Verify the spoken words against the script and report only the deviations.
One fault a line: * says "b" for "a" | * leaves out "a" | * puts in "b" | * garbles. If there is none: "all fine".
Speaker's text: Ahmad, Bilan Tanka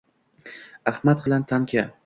all fine